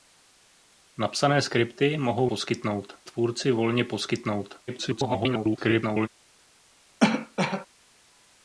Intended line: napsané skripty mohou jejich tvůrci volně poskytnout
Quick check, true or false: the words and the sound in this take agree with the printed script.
false